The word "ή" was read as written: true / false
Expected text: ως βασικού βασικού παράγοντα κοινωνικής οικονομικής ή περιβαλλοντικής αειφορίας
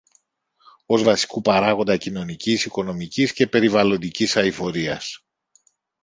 false